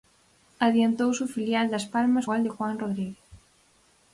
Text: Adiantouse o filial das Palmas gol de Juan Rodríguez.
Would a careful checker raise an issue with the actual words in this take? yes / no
no